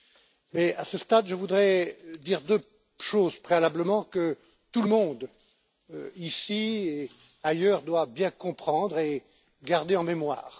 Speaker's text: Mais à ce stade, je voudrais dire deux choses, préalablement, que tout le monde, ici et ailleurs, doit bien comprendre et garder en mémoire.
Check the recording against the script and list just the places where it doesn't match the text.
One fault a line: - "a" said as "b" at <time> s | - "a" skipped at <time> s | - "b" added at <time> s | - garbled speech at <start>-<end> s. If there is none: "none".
none